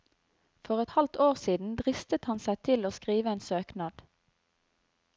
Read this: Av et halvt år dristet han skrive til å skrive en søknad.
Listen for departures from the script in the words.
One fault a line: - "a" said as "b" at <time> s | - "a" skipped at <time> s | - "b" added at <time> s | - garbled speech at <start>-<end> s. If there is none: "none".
- "Av" said as "For" at 0.7 s
- "siden" added at 1.4 s
- "skrive" said as "seg" at 2.5 s